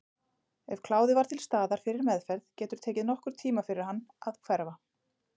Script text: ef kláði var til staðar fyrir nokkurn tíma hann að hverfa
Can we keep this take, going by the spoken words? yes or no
no